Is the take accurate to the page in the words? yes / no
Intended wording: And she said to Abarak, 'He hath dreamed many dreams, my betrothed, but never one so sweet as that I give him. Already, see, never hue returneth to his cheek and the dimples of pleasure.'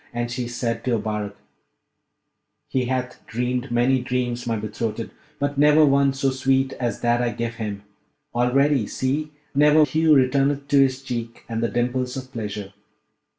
yes